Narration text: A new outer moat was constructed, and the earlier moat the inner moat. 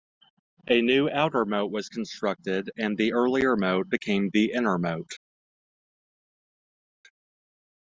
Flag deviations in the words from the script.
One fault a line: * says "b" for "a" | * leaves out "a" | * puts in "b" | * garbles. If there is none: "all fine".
* puts in "became"